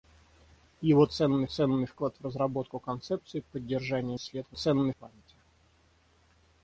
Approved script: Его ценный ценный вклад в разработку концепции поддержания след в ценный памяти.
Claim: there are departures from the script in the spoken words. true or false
false